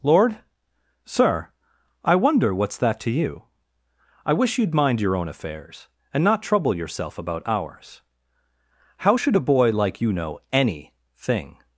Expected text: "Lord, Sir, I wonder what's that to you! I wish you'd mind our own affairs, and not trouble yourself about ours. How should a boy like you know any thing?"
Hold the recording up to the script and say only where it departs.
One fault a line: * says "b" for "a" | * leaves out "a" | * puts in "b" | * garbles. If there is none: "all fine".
* says "your" for "our"